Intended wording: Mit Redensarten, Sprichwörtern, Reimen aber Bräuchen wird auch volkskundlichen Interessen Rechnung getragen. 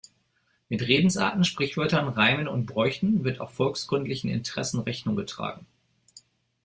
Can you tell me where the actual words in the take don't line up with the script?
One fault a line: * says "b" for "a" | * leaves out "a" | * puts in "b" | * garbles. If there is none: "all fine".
* says "und" for "aber"